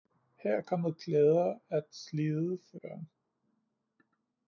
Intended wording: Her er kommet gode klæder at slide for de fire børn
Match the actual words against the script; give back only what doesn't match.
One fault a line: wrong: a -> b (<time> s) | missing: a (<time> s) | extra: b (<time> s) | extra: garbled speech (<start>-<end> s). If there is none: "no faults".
missing: gode (1.0 s)
missing: de fire (2.8 s)